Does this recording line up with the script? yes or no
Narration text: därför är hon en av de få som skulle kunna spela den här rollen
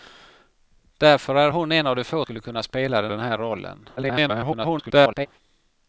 no